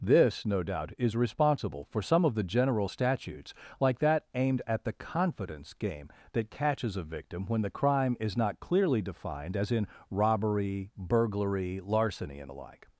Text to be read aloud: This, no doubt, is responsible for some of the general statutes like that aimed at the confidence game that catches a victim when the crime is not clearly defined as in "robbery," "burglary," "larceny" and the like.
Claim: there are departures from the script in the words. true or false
false